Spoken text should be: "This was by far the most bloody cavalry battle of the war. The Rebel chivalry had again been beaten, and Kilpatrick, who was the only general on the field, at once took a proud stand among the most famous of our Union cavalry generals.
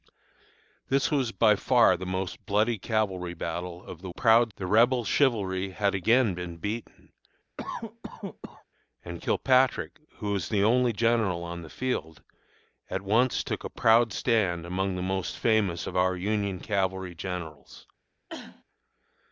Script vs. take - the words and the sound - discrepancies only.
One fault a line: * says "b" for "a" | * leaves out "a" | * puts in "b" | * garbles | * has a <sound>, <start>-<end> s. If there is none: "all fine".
* says "proud" for "war"
* has a cough, 7.6-8.6 s
* has a cough, 18.3-18.6 s